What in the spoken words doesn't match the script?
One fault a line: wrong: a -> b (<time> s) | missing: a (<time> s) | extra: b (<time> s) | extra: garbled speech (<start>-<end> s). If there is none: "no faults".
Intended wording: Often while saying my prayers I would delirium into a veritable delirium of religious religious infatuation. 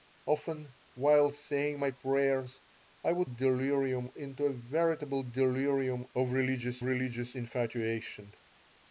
no faults